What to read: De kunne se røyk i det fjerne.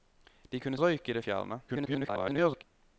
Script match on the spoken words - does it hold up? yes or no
no